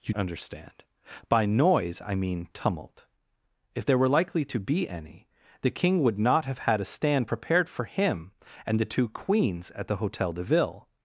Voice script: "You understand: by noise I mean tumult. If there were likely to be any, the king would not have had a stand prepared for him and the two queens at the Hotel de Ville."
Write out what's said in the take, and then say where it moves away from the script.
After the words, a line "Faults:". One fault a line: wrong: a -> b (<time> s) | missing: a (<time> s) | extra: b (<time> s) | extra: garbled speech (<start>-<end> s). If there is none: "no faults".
"You understand: by noise I mean tumult. If there were likely to be any, the king would not have had a stand prepared for him and the two queens at the Hotel de Ville."
Faults:
no faults